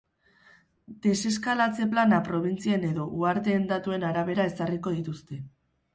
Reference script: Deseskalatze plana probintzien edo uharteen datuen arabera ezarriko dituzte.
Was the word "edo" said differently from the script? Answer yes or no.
no